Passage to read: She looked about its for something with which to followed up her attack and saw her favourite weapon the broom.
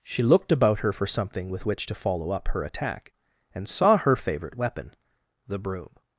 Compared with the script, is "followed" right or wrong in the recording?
wrong